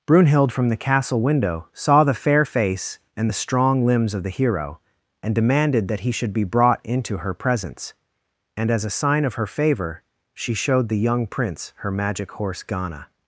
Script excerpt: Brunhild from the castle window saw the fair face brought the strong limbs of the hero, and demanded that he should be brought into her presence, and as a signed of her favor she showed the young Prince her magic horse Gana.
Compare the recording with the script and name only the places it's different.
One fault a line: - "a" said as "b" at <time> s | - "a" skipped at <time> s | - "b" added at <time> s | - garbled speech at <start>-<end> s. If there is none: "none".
- "brought" said as "and" at 3.2 s
- "signed" said as "sign" at 8.9 s